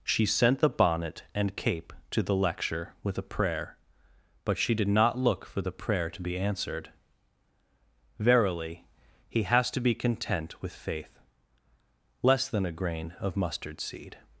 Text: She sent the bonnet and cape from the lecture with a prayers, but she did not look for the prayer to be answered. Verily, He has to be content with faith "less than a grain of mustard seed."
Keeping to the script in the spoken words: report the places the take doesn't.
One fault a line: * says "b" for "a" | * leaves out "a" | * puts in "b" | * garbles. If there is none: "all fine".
* says "to" for "from"
* says "prayer" for "prayers"